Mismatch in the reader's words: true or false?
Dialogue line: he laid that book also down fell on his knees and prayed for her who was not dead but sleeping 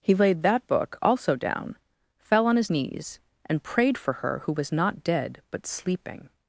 false